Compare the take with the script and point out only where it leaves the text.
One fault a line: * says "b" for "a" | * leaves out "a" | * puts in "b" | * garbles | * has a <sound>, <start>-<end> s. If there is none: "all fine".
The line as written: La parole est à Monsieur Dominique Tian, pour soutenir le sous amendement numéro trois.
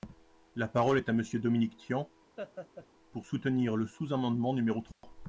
* has a laugh, 2.4-2.9 s
* has a dropout, 4.9-5.0 s